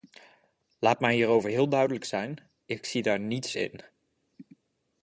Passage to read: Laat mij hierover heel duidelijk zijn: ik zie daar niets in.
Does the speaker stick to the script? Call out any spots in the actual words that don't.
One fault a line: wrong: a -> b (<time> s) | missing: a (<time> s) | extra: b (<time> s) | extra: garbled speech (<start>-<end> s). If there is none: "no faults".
no faults